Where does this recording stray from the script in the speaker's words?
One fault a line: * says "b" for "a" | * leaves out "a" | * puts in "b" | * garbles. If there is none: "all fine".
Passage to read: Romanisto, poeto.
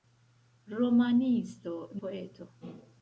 all fine